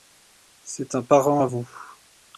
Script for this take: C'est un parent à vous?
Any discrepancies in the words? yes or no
no